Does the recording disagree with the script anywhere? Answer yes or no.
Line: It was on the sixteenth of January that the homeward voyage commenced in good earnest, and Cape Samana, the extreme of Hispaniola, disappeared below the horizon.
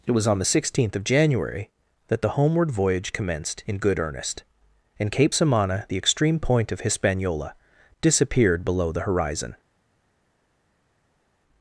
yes